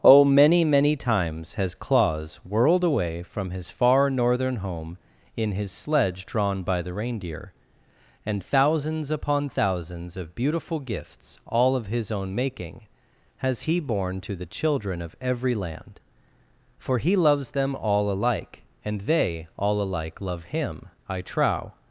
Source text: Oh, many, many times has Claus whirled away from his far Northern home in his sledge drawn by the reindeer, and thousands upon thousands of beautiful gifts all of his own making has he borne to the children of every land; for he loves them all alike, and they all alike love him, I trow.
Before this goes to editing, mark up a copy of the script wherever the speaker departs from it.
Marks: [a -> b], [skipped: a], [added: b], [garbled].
Oh, many, many times has Claus whirled away from his far Northern home in his sledge drawn by the reindeer, and thousands upon thousands of beautiful gifts all of his own making has he borne to the children of every land; for he loves them all alike, and they all alike love him, I trow.